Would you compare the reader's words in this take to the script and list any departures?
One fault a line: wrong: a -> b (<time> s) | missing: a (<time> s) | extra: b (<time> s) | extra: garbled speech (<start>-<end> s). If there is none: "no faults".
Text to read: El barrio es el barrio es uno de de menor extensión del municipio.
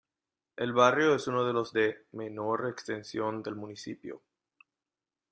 missing: el barrio es (1.3 s)
extra: los (1.5 s)